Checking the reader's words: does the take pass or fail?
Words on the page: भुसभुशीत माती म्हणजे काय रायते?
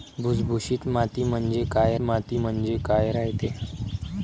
fail